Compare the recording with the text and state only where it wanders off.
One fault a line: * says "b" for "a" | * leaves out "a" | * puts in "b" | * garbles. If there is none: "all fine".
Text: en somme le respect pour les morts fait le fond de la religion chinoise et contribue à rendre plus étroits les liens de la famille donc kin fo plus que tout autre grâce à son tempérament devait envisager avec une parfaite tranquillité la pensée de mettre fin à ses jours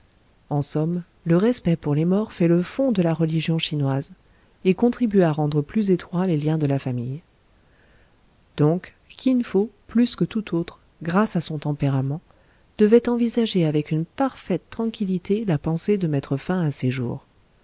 all fine